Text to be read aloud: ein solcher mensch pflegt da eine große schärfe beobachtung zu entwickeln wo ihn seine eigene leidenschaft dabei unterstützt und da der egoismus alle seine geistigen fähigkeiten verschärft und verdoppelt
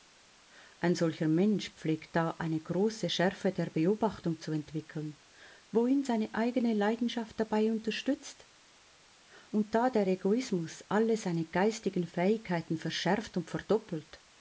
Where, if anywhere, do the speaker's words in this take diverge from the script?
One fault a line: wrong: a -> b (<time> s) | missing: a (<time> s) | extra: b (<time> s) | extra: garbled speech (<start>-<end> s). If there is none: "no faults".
extra: der (3.5 s)